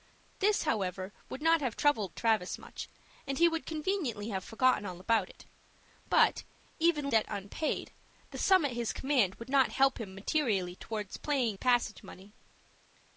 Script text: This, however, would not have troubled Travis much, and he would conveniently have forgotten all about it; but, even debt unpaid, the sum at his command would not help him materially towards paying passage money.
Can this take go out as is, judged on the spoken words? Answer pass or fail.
pass